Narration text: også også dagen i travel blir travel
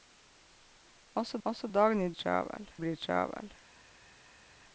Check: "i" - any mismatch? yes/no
no